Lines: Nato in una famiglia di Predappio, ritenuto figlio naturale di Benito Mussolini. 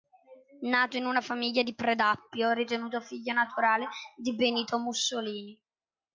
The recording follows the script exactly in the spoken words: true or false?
true